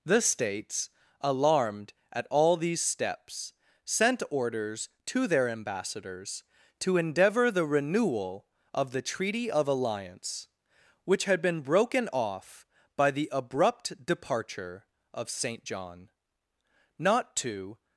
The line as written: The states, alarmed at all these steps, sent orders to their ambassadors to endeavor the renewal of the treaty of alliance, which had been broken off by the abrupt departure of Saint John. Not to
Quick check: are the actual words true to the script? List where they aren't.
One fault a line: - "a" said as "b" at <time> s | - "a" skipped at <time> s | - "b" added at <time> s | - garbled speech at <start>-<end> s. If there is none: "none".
none